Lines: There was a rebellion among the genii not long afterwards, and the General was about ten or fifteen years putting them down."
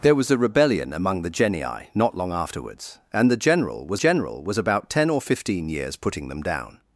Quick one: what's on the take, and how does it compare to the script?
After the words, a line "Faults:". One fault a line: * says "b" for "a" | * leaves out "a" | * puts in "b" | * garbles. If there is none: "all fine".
There was a rebellion among the genii not long afterwards, and the General was General was about ten or fifteen years putting them down."
Faults:
* puts in "General was"